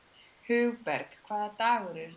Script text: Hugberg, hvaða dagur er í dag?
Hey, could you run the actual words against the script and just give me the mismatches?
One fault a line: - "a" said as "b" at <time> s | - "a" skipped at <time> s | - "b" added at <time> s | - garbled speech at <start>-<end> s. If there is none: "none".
none